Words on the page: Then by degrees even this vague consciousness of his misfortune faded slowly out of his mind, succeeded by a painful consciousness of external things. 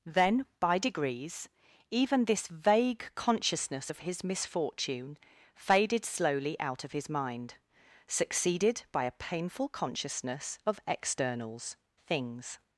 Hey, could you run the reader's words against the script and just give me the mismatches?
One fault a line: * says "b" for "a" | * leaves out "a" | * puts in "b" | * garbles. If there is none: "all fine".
* says "externals" for "external"